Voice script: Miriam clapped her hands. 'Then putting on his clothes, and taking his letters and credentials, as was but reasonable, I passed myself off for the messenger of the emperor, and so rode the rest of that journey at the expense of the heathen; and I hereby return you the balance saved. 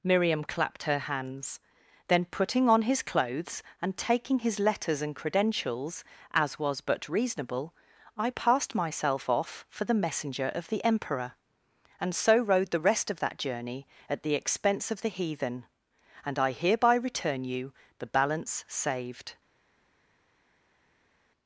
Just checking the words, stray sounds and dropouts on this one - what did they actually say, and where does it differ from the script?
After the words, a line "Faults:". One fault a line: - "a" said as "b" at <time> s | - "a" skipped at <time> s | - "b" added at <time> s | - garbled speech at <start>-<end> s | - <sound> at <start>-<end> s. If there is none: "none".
Miriam clapped her hands. 'Then putting on his clothes, and taking his letters and credentials, as was but reasonable, I passed myself off for the messenger of the emperor, and so rode the rest of that journey at the expense of the heathen; and I hereby return you the balance saved.
Faults:
none